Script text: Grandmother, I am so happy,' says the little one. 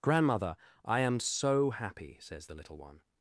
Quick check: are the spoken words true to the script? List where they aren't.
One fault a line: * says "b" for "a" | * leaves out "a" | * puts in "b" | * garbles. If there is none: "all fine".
all fine